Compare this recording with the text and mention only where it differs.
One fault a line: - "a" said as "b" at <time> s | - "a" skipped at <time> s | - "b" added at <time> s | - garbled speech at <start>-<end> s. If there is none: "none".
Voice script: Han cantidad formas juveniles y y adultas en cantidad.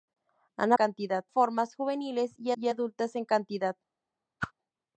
none